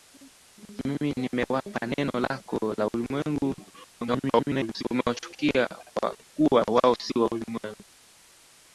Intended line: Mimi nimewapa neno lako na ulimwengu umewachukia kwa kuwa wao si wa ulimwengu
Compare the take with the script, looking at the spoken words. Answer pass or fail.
fail